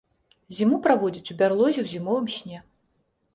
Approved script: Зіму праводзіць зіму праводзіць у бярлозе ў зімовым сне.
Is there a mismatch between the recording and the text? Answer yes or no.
yes